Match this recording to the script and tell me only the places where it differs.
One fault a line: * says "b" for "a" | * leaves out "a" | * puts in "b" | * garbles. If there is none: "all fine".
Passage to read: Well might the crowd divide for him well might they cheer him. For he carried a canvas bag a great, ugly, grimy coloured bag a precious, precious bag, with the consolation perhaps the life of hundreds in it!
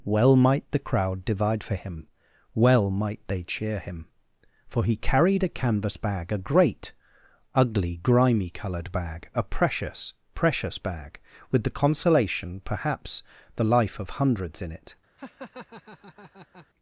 all fine